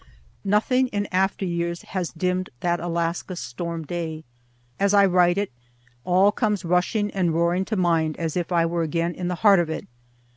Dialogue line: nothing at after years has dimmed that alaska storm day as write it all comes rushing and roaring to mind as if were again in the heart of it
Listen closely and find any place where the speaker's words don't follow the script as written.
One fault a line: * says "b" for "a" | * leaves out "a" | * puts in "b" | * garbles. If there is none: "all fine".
* says "in" for "at"
* puts in "i"
* puts in "i"